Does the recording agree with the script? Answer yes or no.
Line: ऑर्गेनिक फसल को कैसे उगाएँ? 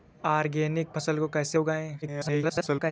no